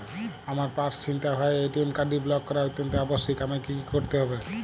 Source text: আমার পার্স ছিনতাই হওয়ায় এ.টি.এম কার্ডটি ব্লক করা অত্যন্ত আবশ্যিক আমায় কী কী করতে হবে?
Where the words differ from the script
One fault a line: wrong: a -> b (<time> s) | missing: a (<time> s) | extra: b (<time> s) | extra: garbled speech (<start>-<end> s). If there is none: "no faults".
no faults